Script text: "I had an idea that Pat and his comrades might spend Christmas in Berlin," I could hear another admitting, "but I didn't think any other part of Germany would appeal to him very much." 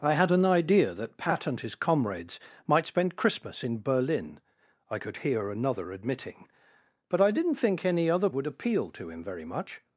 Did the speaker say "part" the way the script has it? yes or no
no